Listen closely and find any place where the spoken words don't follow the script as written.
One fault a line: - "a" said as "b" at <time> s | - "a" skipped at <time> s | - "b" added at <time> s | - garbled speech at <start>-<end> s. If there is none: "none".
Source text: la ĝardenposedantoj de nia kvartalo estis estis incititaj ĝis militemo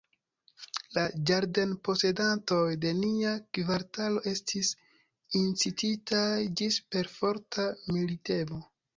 - "estis" skipped at 4.7 s
- "perforta" added at 7.0 s